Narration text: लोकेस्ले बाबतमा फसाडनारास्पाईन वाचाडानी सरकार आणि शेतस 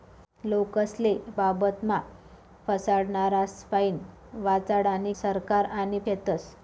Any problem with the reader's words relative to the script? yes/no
no